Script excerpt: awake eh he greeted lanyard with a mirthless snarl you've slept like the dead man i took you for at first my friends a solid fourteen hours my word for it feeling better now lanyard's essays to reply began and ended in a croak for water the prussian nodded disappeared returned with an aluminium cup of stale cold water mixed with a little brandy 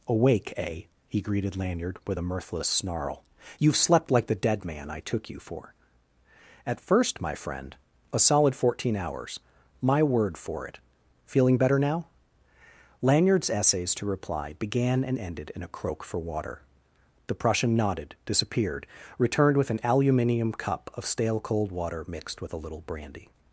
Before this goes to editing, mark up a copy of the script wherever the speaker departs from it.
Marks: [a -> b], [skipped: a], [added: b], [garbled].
awake eh he greeted lanyard with a mirthless snarl you've slept like the dead man i took you for at first my [friends -> friend] a solid fourteen hours my word for it feeling better now lanyard's essays to reply began and ended in a croak for water the prussian nodded disappeared returned with an aluminium cup of stale cold water mixed with a little brandy